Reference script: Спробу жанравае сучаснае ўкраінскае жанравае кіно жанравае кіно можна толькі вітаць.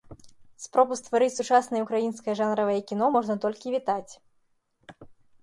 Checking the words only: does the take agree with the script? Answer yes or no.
no